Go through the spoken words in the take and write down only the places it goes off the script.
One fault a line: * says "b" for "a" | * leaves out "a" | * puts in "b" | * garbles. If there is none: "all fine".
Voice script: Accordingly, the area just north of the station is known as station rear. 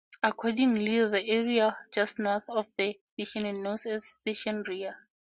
all fine